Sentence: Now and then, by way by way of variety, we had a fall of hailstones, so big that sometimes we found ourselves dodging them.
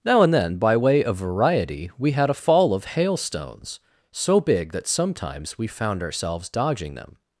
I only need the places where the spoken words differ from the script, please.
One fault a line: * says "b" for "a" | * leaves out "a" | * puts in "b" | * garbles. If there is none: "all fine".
* leaves out "by way"